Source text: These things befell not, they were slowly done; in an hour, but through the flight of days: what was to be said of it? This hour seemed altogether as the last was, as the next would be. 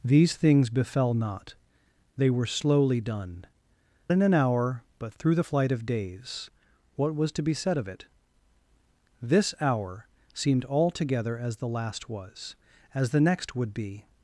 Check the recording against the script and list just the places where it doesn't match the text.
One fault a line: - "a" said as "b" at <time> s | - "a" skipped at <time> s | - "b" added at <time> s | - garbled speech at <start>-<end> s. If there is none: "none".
none